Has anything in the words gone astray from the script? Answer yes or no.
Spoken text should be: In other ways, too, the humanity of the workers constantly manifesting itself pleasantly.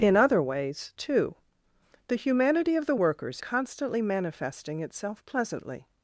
no